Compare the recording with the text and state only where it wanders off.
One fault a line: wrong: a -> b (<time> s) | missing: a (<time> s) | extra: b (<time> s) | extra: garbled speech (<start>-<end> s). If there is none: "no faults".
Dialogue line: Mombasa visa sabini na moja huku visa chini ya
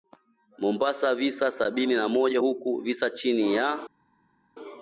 no faults